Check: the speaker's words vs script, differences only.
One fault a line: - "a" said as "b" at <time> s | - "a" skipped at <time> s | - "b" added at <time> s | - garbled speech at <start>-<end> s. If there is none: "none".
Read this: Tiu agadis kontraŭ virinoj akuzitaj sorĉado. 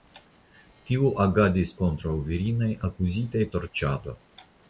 none